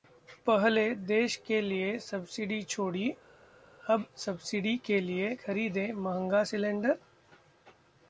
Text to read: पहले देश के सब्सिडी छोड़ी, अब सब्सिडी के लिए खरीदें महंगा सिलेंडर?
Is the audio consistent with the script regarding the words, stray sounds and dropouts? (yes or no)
no